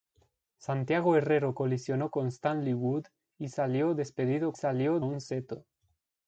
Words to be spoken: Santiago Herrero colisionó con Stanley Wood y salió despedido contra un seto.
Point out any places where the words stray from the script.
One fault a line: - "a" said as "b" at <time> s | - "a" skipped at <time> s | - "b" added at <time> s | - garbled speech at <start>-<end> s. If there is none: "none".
- "contra" said as "salió" at 4.5 s